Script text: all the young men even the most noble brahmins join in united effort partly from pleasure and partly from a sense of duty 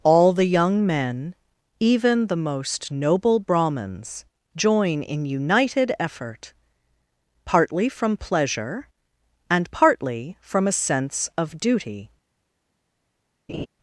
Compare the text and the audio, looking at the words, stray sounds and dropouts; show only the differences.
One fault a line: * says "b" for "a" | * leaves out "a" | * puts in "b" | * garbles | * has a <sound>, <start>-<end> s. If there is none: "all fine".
* has a laugh, 13.5-13.7 s